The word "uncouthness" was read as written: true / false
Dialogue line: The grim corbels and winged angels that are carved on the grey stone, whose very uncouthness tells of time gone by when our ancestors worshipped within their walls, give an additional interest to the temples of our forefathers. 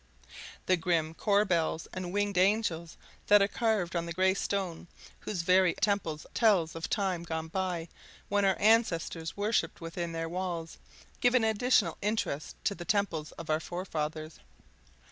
false